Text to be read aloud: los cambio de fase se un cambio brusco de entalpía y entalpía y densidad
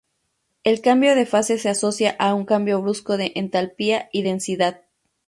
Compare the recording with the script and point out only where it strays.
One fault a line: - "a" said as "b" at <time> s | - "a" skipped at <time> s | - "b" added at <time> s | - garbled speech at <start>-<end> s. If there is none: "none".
- "los" said as "el" at 0.6 s
- "asocia a" added at 1.7 s
- "entalpía y" skipped at 4.2 s